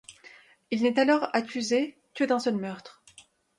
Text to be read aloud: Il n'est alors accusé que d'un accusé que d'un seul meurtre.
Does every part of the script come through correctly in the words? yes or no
no